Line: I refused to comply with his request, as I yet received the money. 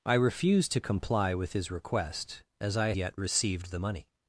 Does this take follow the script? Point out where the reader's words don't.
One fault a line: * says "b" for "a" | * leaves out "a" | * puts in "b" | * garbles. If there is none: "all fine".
all fine